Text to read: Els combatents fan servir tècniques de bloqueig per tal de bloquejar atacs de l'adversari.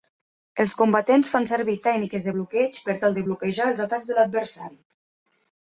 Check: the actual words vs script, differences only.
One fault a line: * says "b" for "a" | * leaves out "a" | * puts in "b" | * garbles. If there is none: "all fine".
* puts in "els"